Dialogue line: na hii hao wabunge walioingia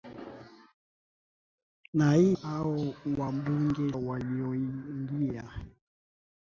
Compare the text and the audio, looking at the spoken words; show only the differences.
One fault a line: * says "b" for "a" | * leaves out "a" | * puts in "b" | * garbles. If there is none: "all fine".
all fine